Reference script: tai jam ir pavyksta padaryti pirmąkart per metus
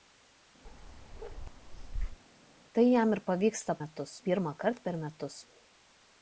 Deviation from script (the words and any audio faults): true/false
true